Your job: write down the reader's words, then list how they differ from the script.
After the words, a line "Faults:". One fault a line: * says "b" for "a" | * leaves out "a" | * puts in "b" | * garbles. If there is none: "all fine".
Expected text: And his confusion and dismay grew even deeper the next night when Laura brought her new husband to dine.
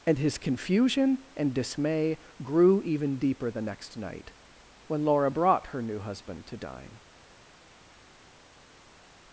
And his confusion and dismay grew even deeper the next night when Laura brought her new husband to dine.
Faults:
all fine